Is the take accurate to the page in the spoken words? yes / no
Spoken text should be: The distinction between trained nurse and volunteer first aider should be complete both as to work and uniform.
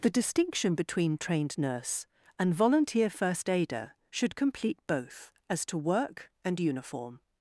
no